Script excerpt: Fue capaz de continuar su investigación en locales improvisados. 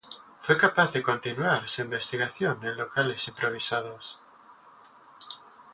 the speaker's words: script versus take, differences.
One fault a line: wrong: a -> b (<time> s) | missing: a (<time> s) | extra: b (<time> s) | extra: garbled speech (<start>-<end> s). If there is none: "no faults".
no faults